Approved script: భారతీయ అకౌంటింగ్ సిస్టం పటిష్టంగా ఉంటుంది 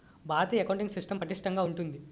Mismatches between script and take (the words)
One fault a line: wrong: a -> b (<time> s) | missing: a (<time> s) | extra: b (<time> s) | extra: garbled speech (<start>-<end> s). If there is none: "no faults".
no faults